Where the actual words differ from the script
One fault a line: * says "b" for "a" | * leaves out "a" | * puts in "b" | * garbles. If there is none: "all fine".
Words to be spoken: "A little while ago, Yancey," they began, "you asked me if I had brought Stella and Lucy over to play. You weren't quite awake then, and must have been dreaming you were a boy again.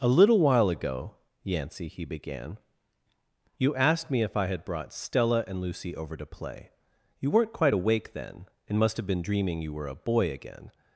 * says "he" for "they"